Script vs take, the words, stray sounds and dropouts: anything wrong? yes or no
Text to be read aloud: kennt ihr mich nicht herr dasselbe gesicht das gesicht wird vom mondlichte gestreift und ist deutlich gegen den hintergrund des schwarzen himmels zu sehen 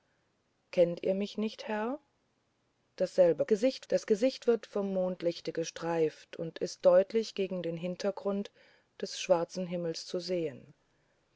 no